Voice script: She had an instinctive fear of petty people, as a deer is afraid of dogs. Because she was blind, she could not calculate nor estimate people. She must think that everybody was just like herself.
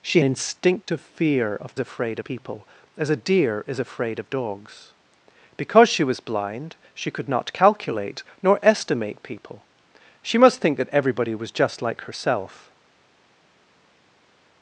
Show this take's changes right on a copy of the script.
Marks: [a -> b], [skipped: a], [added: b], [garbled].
She [skipped: had an] instinctive fear of [petty -> afraid] people, as a deer is afraid of dogs. Because she was blind, she could not calculate nor estimate people. She must think that everybody was just like herself.